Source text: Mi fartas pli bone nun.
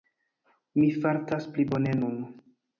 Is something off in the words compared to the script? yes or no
no